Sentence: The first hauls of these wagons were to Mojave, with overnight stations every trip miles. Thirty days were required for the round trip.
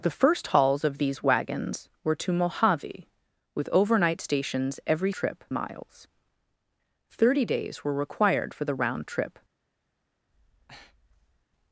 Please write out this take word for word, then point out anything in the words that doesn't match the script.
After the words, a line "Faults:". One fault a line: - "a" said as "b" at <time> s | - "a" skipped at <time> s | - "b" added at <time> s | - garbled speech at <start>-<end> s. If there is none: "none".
The first hauls of these wagons were to Mojave, with overnight stations every trip miles. Thirty days were required for the round trip.
Faults:
none